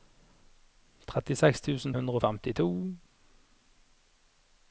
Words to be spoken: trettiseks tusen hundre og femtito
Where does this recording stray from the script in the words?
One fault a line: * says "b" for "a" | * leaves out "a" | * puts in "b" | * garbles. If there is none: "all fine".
all fine